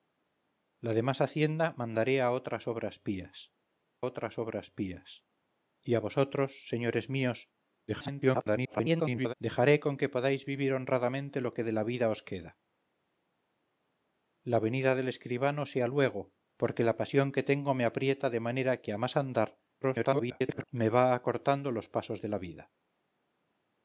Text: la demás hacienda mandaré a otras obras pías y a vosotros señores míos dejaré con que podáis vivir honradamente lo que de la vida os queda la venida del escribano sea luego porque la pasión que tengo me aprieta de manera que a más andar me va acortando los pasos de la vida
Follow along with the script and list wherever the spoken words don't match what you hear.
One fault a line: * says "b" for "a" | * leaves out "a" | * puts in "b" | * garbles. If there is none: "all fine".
* puts in "otras obras pías"
* garbles
* garbles